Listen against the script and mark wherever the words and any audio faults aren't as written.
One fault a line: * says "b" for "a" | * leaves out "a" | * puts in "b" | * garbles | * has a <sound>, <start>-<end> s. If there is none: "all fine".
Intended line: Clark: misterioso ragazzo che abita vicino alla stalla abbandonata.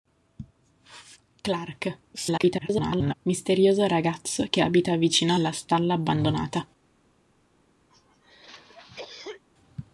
* garbles
* has a cough, 7.9-9.4 s